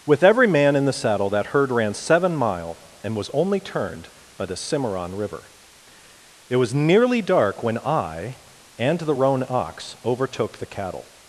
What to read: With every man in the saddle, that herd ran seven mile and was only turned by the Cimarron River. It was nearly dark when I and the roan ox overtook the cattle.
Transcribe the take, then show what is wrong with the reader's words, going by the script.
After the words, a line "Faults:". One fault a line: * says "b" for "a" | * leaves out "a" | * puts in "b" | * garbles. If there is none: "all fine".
With every man in the saddle, that herd ran seven mile and was only turned by the Cimarron River. It was nearly dark when I and the roan ox overtook the cattle.
Faults:
all fine